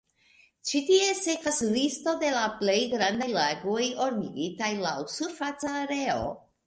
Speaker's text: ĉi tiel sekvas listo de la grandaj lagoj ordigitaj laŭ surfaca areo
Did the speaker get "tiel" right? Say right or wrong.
wrong